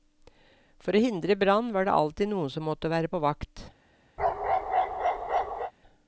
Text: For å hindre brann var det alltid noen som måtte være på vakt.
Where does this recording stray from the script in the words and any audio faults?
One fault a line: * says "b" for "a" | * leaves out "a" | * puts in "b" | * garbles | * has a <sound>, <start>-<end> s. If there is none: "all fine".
* has a bark, 4.2-5.7 s